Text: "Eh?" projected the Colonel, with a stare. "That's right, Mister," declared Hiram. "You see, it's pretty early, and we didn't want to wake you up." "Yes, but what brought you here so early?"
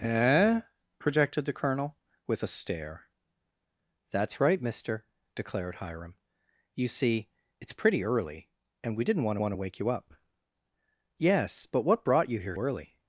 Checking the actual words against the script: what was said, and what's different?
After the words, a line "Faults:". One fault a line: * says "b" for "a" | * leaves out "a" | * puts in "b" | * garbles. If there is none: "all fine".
"Eh?" projected the Colonel, with a stare. "That's right, Mister," declared Hiram. "You see, it's pretty early, and we didn't want want to wake you up." "Yes, but what brought you here early?"
Faults:
* puts in "want"
* leaves out "so"